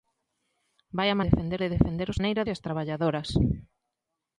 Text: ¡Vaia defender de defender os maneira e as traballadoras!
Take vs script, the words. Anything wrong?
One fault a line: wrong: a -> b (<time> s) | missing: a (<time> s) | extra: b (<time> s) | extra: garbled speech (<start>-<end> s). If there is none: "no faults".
no faults